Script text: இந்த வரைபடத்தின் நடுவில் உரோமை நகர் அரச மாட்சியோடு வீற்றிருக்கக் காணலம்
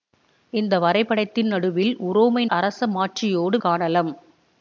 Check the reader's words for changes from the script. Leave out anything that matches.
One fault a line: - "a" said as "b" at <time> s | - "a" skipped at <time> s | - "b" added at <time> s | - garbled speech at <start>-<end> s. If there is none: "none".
- "நகர்" skipped at 2.4 s
- "வீற்றிருக்கக்" skipped at 3.6 s